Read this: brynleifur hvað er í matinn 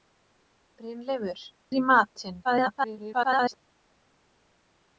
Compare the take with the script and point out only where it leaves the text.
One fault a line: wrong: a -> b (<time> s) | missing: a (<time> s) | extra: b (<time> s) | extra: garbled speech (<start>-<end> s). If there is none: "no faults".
missing: hvað (1.4 s)
extra: garbled speech (2.4-3.6 s)